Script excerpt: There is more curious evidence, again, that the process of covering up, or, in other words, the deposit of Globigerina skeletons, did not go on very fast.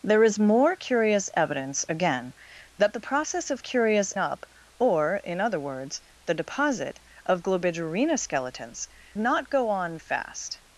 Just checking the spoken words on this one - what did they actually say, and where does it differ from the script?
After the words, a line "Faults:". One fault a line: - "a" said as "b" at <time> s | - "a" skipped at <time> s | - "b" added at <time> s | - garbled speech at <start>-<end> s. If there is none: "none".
There is more curious evidence, again, that the process of curious up, or, in other words, the deposit of Globigerina skeletons, not go on fast.
Faults:
- "covering" said as "curious" at 3.6 s
- "did" skipped at 8.9 s
- "very" skipped at 10.0 s